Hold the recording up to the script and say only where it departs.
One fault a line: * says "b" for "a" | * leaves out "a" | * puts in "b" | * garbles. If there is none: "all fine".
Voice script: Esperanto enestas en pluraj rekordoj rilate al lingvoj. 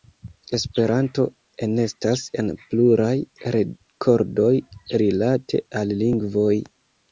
all fine